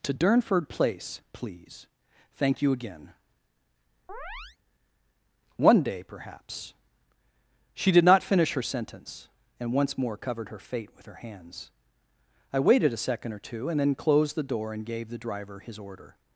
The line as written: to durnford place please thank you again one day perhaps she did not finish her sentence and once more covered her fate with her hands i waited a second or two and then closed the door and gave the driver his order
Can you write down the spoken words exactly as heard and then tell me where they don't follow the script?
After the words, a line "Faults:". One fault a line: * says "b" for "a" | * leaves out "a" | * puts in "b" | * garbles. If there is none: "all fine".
to durnford place please thank you again one day perhaps she did not finish her sentence and once more covered her fate with her hands i waited a second or two and then closed the door and gave the driver his order
Faults:
all fine